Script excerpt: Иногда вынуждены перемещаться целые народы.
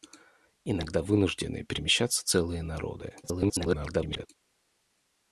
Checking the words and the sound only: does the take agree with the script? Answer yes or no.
no